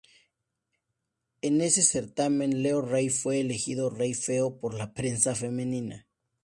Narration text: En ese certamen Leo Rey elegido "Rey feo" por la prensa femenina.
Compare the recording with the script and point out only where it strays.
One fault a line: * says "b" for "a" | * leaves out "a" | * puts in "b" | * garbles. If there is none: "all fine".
* puts in "fue"